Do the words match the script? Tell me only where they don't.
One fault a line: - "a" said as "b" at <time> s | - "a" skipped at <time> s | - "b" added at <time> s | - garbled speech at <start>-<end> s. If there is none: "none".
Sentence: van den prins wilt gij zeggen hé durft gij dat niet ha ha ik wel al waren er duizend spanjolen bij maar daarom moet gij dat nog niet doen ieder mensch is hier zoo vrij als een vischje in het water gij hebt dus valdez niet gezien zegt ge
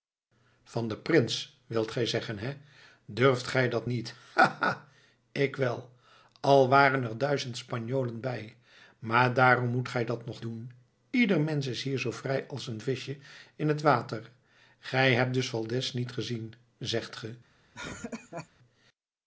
- "niet" skipped at 10.4 s